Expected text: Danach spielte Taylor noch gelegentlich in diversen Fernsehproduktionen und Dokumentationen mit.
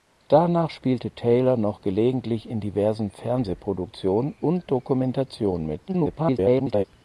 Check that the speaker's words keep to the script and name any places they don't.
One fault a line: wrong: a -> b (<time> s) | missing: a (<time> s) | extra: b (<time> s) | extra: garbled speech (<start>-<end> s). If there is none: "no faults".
extra: garbled speech (5.9-6.8 s)